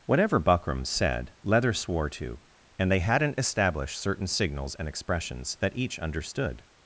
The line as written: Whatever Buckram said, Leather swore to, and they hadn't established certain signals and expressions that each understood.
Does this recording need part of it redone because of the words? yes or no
no